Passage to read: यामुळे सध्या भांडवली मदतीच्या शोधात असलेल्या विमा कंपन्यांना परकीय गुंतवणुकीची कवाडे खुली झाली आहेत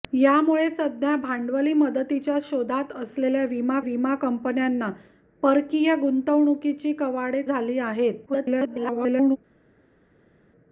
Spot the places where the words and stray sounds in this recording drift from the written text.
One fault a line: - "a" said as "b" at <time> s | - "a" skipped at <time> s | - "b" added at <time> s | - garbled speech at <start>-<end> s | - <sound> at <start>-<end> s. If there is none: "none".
- "विमा" added at 3.8 s
- "खुली" skipped at 7.4 s
- garbled speech at 8.3-9.4 s